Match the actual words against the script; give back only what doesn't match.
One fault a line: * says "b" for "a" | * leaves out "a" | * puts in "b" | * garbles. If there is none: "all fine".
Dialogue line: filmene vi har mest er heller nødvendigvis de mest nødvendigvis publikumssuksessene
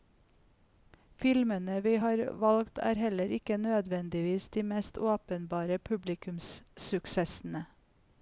* says "valgt" for "mest"
* puts in "ikke"
* says "åpenbare" for "nødvendigvis"